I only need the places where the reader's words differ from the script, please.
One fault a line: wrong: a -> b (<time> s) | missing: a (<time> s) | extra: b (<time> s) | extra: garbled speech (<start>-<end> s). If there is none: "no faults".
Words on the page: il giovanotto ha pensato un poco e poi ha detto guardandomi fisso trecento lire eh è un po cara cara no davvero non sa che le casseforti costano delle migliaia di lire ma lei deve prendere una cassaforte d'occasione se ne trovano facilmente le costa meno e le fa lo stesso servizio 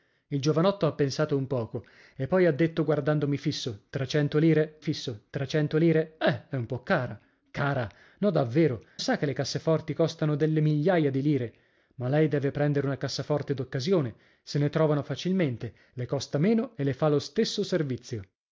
extra: fisso trecento lire (4.8 s)
missing: non (8.8 s)